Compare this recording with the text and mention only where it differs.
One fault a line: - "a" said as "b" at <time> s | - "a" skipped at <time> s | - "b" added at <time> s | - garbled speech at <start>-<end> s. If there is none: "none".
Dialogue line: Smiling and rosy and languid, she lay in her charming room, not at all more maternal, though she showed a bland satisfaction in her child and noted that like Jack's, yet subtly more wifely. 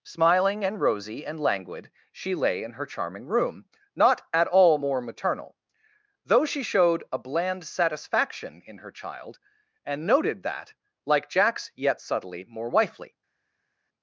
none